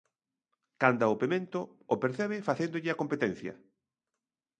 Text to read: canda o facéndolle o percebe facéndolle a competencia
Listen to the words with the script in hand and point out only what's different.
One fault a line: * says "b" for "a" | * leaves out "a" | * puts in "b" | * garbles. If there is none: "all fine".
* says "pemento" for "facéndolle"